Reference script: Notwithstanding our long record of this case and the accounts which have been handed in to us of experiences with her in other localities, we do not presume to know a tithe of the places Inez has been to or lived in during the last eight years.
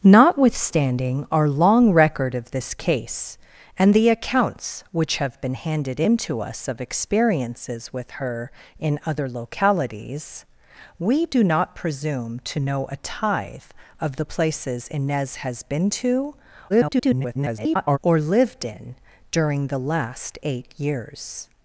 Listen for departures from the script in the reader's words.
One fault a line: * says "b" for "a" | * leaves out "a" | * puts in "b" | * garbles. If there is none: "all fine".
* garbles